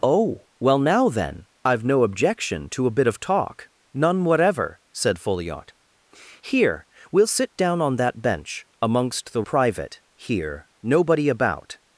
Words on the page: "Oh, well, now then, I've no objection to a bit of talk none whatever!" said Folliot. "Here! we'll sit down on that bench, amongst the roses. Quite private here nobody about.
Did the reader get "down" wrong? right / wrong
right